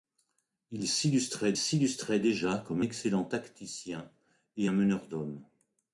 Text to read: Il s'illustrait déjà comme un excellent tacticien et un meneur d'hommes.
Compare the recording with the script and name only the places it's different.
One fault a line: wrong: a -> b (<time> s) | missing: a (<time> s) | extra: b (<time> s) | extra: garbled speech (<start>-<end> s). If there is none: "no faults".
extra: s'illustrait (1.6 s)
missing: un (2.8 s)